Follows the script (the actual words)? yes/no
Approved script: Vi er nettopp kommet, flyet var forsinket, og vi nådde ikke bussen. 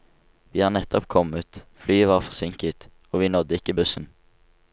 yes